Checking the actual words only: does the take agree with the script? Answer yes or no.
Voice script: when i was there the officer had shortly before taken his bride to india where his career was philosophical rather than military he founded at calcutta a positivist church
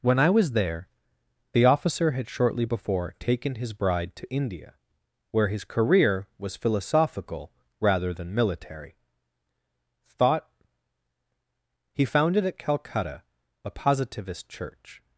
no